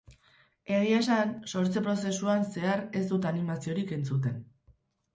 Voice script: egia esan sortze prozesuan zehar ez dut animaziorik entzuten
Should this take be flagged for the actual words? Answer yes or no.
no